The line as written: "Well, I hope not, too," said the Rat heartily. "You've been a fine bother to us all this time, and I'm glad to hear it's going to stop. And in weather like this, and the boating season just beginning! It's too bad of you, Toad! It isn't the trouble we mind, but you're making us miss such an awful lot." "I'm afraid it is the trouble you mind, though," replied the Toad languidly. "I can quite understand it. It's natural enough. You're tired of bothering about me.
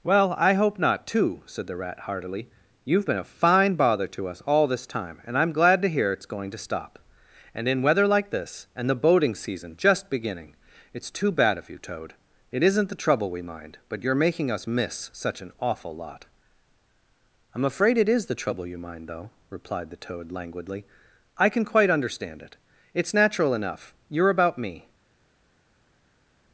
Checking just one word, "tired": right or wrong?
wrong